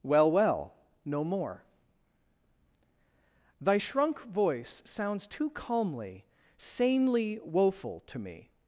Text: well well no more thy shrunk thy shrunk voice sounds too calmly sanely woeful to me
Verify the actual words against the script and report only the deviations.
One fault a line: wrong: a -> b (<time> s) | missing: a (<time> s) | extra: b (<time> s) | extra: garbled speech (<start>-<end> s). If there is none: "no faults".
missing: thy shrunk (4.2 s)